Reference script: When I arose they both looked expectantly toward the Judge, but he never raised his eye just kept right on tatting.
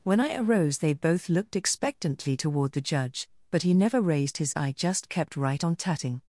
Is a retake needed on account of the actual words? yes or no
no